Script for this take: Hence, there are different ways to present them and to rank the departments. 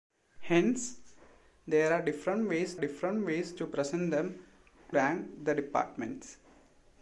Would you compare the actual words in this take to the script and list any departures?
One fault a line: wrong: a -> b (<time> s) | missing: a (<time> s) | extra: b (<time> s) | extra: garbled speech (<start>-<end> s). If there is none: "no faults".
extra: different ways (2.8 s)
missing: and to (4.4 s)